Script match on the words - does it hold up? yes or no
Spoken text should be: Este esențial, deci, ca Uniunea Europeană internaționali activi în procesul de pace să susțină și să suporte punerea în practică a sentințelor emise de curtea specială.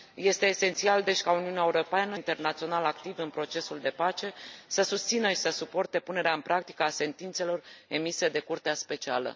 yes